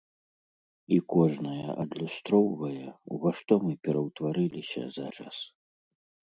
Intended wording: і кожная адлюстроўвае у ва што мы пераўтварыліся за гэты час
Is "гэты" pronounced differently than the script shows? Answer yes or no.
yes